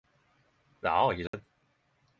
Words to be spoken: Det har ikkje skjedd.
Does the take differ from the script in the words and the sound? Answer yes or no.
yes